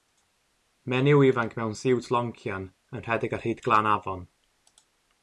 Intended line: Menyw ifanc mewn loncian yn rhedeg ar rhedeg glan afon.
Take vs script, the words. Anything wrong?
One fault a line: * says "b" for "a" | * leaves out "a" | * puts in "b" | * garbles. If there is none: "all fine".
* puts in "siwt"
* says "hyd" for "rhedeg"